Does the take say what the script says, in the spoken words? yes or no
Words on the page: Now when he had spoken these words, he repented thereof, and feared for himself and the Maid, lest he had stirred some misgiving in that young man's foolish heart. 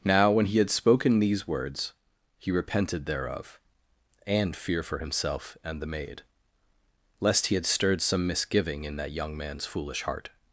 no